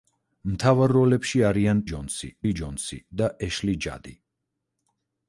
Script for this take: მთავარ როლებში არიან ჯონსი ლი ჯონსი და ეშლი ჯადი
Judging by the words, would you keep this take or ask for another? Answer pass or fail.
pass